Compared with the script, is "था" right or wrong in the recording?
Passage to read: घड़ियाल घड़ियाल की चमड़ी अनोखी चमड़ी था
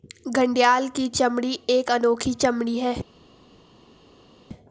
wrong